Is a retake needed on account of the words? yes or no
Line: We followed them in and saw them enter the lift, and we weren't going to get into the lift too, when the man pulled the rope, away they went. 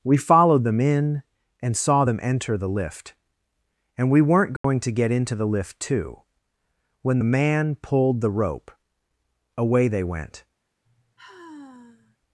no